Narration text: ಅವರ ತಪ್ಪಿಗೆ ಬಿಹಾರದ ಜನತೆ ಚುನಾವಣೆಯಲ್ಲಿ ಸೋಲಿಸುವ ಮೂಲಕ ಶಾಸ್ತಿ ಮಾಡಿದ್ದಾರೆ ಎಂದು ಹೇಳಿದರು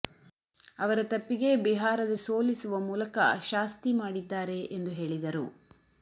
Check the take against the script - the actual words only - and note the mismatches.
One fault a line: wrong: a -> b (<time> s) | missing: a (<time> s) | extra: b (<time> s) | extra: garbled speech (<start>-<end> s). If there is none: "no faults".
missing: ಜನತೆ ಚುನಾವಣೆಯಲ್ಲಿ (2.1 s)